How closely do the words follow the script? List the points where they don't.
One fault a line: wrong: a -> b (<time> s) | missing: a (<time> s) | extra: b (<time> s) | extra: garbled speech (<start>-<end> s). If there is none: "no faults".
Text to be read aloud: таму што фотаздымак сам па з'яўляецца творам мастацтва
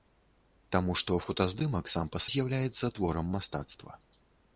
no faults